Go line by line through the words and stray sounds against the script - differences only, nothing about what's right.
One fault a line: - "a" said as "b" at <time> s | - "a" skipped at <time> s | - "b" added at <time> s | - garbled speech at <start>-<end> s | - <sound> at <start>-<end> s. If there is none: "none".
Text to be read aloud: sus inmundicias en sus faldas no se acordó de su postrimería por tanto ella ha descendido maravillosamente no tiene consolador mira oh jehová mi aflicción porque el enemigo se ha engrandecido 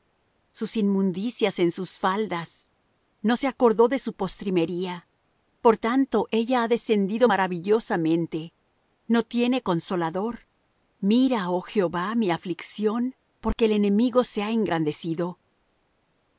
none